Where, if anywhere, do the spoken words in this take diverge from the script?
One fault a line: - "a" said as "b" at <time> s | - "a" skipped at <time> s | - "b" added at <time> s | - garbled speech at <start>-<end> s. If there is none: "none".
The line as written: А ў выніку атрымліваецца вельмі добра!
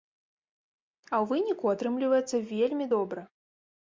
none